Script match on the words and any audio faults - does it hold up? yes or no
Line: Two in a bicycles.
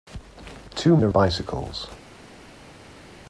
yes